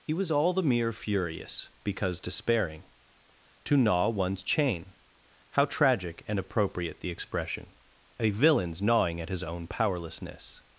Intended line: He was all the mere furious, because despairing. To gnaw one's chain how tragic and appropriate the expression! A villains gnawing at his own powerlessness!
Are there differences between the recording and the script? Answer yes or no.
no